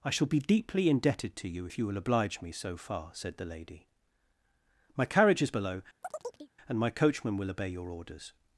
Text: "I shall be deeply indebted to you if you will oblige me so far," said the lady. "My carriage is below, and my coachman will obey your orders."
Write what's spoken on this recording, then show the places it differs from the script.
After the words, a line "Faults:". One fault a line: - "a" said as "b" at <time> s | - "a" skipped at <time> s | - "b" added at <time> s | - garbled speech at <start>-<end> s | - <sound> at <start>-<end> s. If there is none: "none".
"I shall be deeply indebted to you if you will oblige me so far," said the lady. "My carriage is below, and my coachman will obey your orders."
Faults:
- chirp at 6.0-6.5 s